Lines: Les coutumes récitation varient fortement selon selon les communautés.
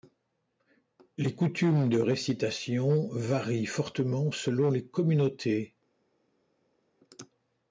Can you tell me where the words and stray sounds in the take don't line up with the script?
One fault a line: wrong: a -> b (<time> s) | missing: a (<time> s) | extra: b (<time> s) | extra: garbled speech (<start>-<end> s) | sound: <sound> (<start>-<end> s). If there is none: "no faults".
extra: de (1.9 s)
missing: selon (4.7 s)